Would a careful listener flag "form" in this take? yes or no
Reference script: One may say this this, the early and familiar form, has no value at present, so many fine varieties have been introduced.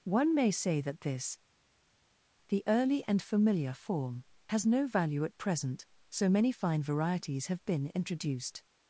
no